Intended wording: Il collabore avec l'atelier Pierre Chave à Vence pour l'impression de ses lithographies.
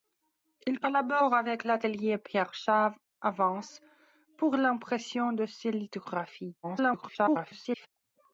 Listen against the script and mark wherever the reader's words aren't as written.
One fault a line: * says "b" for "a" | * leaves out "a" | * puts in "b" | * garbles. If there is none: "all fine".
* garbles